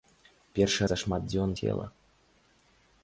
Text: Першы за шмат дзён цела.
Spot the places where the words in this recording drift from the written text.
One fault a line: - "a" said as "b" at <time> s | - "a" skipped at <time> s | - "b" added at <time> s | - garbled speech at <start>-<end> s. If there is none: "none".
none